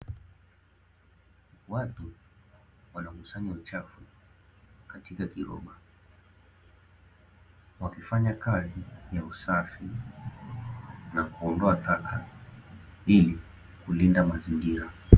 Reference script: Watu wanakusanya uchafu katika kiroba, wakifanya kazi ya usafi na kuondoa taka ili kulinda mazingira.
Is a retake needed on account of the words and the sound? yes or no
no